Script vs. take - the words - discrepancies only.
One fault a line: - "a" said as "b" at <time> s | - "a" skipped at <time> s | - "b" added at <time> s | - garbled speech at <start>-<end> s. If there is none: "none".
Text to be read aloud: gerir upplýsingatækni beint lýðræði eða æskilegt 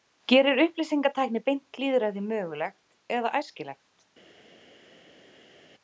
- "mögulegt" added at 2.3 s